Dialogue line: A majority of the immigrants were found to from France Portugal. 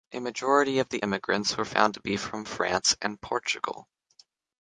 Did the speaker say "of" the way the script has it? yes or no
yes